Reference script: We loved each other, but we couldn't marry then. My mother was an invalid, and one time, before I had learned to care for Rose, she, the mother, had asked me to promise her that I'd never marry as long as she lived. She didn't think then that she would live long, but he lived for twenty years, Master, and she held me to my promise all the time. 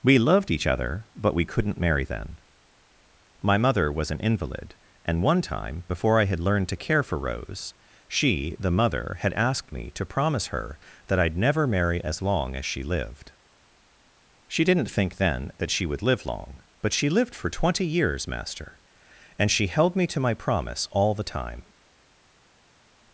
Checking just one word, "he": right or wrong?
wrong